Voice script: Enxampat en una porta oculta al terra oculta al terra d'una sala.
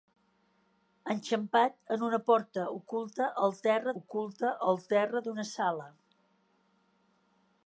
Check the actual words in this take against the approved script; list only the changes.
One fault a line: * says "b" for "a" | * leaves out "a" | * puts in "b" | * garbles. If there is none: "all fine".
all fine